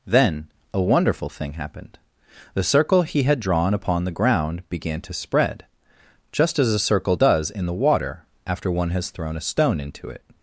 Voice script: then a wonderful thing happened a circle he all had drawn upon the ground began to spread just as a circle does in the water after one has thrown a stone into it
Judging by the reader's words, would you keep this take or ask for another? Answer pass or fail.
fail